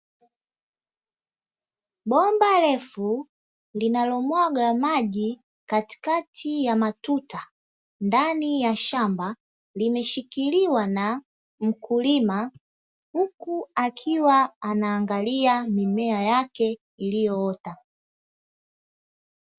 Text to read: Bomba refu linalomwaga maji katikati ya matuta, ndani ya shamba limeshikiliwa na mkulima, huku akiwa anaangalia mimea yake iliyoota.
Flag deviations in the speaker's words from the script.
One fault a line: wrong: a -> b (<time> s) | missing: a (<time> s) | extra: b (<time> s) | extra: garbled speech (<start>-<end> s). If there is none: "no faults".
no faults